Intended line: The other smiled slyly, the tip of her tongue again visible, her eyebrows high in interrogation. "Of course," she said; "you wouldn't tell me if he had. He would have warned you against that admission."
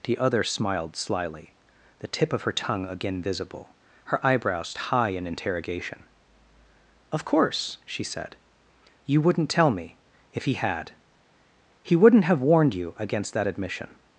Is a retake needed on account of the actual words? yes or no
yes